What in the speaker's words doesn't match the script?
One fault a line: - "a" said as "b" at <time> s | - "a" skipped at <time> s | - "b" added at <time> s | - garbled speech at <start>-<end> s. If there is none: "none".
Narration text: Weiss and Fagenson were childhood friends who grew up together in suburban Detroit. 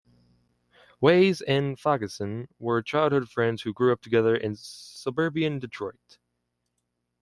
none